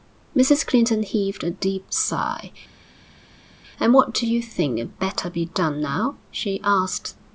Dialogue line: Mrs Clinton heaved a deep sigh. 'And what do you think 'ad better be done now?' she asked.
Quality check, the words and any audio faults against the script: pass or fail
pass